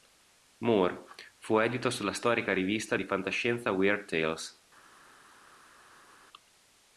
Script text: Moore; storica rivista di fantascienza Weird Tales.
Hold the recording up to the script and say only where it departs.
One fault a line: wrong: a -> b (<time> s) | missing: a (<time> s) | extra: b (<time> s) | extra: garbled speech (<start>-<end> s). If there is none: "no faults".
extra: fu edito sulla (1.4 s)